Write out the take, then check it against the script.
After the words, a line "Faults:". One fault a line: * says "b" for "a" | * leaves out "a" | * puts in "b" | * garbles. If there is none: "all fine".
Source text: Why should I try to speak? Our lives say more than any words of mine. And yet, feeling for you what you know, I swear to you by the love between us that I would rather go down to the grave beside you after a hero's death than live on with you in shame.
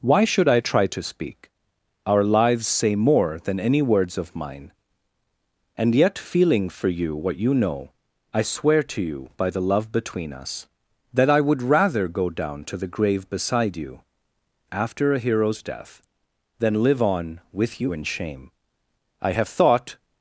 Why should I try to speak? Our lives say more than any words of mine. And yet, feeling for you what you know, I swear to you by the love between us that I would rather go down to the grave beside you after a hero's death than live on with you in shame. I have thought
Faults:
* puts in "I have thought"